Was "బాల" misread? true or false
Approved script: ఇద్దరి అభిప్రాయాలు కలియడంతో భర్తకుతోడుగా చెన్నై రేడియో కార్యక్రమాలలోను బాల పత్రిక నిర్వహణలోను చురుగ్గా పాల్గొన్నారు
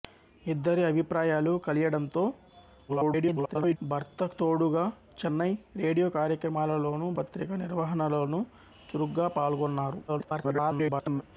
true